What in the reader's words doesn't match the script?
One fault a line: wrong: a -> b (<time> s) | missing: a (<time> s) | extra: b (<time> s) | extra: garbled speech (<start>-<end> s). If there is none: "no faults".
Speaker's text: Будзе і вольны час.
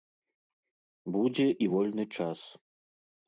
no faults